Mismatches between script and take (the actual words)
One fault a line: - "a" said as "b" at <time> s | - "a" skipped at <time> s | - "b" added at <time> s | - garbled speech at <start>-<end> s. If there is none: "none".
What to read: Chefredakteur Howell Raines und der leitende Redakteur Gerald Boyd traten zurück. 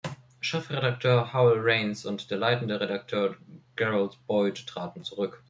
none